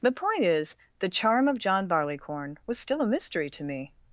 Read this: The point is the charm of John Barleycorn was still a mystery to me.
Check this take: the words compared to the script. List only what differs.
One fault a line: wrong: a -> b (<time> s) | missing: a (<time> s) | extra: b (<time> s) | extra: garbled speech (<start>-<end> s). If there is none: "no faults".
no faults